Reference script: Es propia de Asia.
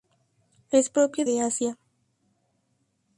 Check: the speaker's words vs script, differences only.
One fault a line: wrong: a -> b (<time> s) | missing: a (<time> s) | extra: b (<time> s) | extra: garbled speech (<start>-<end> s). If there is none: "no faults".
no faults